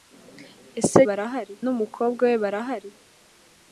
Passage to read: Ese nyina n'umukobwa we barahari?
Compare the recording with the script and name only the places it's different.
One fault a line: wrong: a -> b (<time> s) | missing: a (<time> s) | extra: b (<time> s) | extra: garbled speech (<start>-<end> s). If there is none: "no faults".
wrong: nyina -> barahari (1.1 s)